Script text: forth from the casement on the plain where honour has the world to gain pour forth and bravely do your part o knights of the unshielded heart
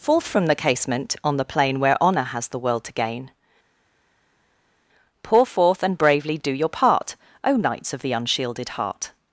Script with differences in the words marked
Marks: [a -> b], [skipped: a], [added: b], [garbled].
forth from the casement on the plain where honour has the world to gain pour forth and bravely do your part o knights of the unshielded heart